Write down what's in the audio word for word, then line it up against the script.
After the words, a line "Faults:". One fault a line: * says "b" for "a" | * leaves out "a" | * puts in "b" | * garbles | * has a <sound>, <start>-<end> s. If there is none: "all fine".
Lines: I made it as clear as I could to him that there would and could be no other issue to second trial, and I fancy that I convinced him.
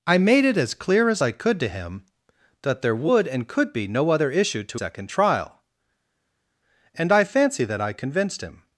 I made it as clear as I could to him that there would and could be no other issue to second trial, and I fancy that I convinced him.
Faults:
all fine